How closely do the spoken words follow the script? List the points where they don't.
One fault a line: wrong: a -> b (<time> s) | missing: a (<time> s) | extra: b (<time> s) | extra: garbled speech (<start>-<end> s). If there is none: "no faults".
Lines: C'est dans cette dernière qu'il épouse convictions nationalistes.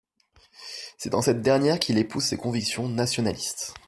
extra: ses (2.2 s)